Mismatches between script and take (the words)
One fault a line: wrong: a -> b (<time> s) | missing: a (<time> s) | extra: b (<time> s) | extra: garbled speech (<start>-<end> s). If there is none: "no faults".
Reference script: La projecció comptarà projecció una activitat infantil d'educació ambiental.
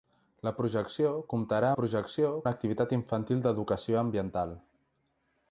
no faults